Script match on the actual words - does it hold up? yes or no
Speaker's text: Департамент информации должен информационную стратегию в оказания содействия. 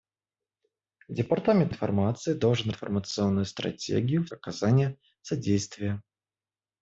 yes